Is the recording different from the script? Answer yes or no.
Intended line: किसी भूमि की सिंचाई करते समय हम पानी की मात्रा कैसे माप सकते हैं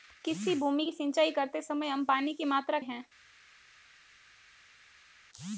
yes